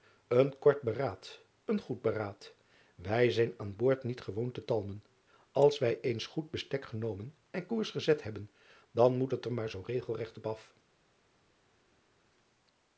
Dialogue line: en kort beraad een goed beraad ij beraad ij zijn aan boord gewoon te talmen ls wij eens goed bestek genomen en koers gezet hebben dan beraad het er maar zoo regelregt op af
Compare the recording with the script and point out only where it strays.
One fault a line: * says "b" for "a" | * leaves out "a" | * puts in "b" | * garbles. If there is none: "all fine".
* leaves out "beraad ij"
* puts in "niet"
* says "moet" for "beraad"